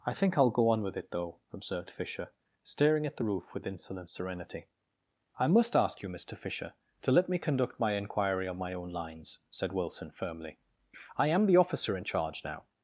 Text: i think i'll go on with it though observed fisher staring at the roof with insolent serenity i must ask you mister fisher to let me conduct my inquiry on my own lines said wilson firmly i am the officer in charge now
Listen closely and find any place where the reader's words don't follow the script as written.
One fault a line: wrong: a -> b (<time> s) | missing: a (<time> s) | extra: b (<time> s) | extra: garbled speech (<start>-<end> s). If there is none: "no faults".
no faults